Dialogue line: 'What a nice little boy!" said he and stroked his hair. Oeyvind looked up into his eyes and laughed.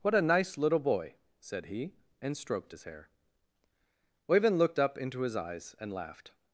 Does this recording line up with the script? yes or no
yes